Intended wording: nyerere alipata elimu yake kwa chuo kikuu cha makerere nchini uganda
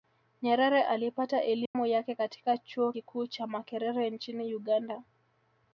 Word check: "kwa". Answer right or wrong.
wrong